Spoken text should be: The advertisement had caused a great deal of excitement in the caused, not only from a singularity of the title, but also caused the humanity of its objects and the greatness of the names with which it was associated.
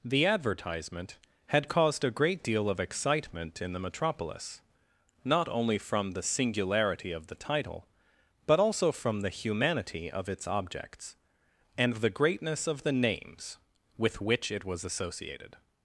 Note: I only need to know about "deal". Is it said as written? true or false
true